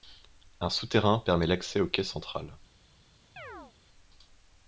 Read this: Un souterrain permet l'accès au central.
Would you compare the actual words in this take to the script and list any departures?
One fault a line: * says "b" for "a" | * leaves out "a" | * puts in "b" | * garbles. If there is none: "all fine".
* puts in "quai"